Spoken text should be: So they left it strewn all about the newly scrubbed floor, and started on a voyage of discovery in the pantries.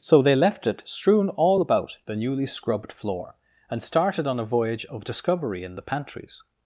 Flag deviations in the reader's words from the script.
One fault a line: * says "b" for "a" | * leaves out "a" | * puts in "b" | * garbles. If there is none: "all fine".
all fine